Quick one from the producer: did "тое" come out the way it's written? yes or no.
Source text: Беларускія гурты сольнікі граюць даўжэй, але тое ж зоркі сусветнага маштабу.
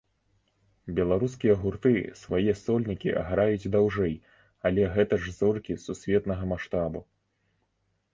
no